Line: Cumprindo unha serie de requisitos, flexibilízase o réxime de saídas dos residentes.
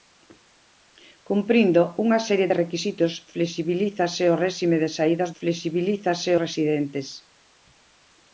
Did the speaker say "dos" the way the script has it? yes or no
no